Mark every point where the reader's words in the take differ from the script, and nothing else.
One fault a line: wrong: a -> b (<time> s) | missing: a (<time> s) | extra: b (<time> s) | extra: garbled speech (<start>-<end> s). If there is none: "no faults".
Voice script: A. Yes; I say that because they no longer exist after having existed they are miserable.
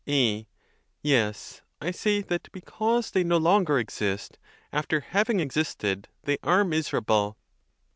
no faults